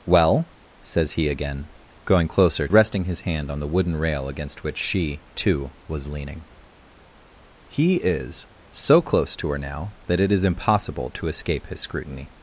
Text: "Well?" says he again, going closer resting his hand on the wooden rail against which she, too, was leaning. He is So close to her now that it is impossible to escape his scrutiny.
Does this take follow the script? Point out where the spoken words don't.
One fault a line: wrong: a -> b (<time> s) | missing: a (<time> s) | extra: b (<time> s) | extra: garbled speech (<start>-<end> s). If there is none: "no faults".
no faults